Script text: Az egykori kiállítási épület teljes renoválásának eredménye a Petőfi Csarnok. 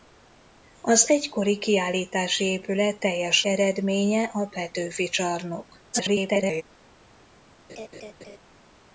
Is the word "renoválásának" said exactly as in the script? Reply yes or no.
no